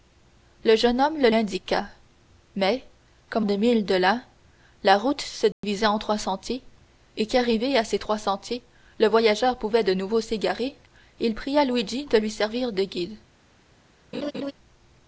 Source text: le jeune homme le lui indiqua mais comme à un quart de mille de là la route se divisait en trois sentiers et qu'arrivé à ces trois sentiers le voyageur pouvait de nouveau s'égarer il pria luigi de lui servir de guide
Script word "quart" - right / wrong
wrong